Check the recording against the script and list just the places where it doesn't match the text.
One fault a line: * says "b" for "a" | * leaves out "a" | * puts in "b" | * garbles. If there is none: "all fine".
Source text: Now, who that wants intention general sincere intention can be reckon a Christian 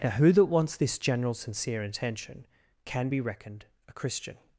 * says "this" for "intention"
* says "reckoned" for "reckon"